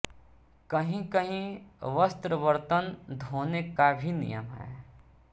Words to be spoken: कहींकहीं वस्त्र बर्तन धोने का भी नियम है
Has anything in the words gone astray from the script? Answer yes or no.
no